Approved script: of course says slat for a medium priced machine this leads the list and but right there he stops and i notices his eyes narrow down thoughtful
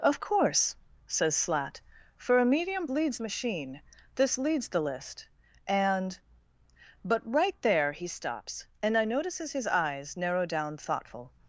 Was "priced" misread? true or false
true